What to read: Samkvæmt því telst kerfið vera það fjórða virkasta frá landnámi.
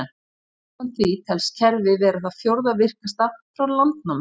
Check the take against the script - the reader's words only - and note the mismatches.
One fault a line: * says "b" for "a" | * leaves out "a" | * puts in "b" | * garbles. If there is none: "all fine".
all fine